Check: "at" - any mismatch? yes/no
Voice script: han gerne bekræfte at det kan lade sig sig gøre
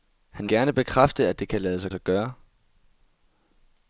no